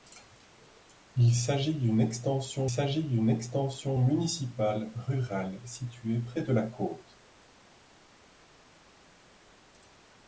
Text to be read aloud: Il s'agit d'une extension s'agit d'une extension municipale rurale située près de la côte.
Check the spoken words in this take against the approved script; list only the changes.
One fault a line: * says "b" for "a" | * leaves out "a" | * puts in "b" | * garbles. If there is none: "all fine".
all fine